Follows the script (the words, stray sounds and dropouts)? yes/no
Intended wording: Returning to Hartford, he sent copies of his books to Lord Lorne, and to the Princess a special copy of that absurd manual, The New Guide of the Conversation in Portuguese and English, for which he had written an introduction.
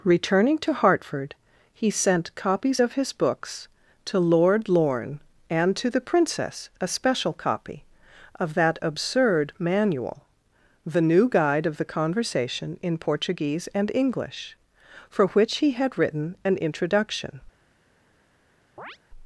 no